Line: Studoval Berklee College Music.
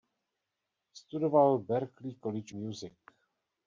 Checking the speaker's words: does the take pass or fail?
pass